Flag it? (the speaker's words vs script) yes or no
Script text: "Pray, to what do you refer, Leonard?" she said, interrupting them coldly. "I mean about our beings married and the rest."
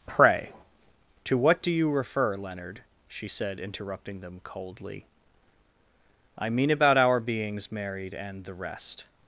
no